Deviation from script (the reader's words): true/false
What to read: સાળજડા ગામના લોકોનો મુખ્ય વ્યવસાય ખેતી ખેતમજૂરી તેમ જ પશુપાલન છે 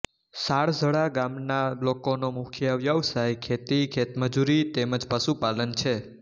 false